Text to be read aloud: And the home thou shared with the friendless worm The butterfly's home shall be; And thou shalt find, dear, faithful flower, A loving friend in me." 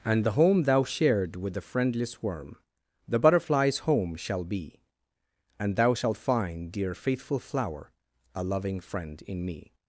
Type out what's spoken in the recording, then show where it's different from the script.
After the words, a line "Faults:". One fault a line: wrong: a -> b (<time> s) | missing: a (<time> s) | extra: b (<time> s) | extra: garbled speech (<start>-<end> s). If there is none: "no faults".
And the home thou shared with the friendless worm The butterfly's home shall be; And thou shalt find, dear, faithful flower, A loving friend in me."
Faults:
no faults